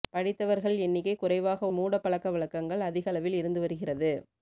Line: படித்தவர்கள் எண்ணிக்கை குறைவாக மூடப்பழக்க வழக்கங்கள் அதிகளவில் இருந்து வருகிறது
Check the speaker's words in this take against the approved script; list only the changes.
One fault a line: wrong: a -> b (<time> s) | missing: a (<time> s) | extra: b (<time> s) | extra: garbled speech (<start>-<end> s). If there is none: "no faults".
no faults